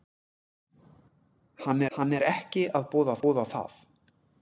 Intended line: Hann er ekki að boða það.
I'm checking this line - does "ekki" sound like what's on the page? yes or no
yes